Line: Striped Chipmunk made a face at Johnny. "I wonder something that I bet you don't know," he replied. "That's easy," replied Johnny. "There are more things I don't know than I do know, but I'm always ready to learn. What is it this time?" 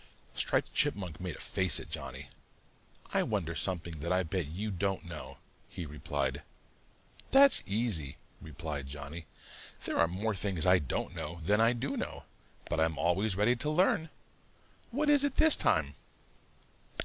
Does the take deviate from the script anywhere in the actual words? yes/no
no